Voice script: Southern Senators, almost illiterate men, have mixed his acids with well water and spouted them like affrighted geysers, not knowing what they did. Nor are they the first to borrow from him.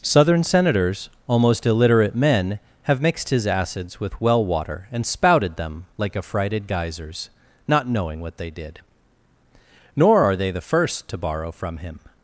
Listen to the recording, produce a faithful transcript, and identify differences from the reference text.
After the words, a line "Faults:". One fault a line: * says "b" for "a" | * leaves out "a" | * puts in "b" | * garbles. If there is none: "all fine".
Southern Senators, almost illiterate men, have mixed his acids with well water and spouted them like affrighted geysers, not knowing what they did. Nor are they the first to borrow from him.
Faults:
all fine